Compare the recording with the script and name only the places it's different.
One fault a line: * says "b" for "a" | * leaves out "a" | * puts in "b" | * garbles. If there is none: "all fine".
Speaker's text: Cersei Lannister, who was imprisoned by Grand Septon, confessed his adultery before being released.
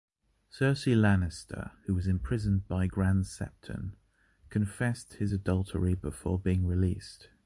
all fine